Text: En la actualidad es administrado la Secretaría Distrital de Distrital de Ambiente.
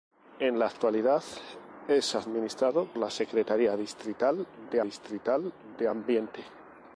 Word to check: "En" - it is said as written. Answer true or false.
true